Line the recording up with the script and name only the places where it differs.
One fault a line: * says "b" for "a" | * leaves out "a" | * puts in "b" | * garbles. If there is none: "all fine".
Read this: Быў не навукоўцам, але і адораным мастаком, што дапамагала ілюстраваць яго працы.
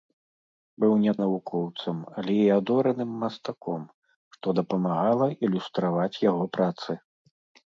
all fine